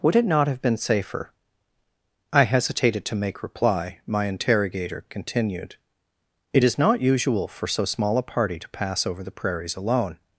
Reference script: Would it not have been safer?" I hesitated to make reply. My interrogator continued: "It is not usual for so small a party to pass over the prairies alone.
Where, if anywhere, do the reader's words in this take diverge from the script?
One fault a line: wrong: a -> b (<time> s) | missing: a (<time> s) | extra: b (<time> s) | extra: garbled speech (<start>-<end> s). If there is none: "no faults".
no faults